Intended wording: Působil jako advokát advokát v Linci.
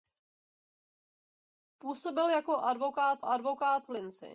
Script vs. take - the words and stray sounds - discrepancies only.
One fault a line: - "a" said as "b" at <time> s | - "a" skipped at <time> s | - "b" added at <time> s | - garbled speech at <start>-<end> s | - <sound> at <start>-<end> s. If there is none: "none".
none